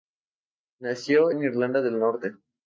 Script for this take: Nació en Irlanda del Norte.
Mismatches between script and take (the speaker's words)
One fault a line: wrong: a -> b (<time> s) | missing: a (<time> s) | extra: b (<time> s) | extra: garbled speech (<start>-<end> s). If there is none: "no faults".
no faults